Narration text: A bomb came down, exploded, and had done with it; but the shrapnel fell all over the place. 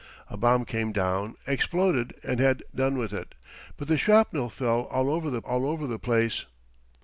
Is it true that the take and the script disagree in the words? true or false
true